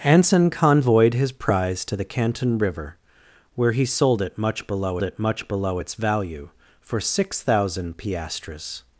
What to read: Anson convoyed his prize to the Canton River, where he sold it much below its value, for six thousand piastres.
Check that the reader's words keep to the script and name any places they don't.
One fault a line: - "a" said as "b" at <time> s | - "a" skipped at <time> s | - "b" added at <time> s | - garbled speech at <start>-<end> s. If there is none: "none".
- "it much below" added at 5.0 s